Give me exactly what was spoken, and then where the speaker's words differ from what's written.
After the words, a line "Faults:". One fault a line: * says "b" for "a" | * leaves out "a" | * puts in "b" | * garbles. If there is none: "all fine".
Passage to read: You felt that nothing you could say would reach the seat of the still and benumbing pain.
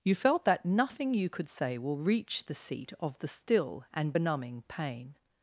You felt that nothing you could say will reach the seat of the still and benumbing pain.
Faults:
* says "will" for "would"